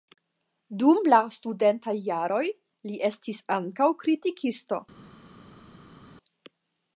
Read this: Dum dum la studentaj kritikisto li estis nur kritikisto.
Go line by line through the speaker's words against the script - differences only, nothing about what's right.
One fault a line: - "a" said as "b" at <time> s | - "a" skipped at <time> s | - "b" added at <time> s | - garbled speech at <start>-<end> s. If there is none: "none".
- "dum" skipped at 1.0 s
- "kritikisto" said as "jaroj" at 2.1 s
- "nur" said as "ankaŭ" at 3.6 s